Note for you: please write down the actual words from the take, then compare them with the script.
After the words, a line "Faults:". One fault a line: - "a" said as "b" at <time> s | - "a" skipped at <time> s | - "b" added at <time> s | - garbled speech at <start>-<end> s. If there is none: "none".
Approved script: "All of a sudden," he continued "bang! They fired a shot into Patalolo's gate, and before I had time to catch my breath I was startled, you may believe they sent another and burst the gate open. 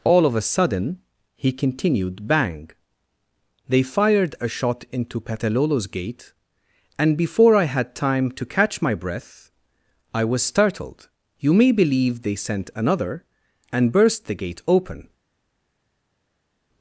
"All of a sudden," he continued "bang! They fired a shot into Patalolo's gate, and before I had time to catch my breath I was startled, you may believe they sent another and burst the gate open.
Faults:
none